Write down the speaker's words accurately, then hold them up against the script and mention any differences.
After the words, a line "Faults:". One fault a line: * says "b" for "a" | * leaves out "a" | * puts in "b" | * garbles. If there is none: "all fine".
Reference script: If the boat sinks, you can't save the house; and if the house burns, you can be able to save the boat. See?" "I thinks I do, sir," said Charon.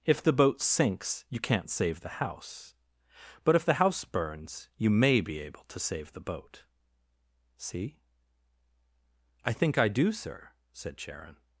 If the boat sinks, you can't save the house; but if the house burns, you may be able to save the boat. See?" "I think I do, sir," said Charon.
Faults:
* says "but" for "and"
* says "may" for "can"
* says "think" for "thinks"